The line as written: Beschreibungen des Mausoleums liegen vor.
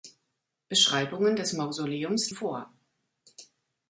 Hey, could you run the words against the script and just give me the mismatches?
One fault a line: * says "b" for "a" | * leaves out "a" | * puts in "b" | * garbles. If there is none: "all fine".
* leaves out "liegen"